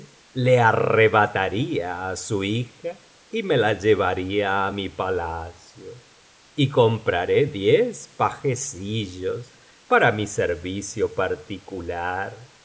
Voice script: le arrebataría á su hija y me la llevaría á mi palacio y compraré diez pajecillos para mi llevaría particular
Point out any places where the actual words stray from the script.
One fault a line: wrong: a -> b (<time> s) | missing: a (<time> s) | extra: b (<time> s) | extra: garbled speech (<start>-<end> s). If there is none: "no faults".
wrong: llevaría -> servicio (10.3 s)